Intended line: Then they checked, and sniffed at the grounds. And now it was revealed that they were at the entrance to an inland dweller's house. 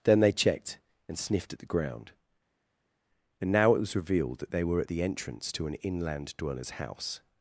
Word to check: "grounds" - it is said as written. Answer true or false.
false